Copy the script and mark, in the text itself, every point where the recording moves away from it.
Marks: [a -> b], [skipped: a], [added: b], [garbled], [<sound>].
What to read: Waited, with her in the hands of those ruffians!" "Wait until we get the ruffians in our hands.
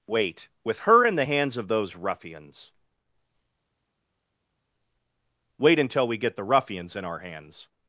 [Waited, -> Wait] with her in the hands of those ruffians!" "Wait until we get the ruffians in our hands.